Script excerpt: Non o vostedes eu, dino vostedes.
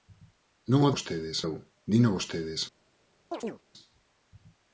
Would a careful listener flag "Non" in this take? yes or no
no